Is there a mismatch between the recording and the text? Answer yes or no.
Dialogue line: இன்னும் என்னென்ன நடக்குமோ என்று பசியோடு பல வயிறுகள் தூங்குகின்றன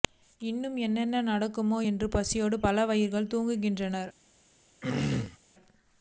no